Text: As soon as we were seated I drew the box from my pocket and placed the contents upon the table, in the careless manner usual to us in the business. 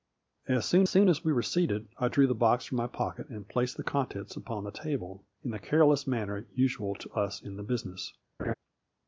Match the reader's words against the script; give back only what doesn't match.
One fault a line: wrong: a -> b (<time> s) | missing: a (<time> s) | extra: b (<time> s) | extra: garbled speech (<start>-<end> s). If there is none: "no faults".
extra: soon (0.9 s)